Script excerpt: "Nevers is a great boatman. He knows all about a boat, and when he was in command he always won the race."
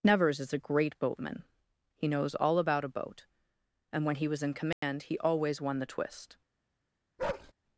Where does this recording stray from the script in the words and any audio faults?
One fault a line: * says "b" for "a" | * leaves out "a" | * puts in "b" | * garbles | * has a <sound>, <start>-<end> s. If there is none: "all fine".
* has a dropout, 4.7-4.8 s
* says "twist" for "race"
* has a bark, 7.2-7.5 s